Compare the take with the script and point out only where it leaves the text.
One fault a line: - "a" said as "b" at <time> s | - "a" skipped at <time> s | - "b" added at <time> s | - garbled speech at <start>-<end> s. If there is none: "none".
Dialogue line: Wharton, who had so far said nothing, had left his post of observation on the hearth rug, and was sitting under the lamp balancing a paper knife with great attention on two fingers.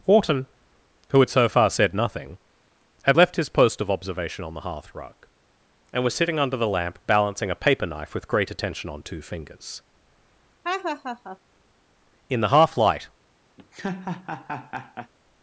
- "In the half light" added at 12.3 s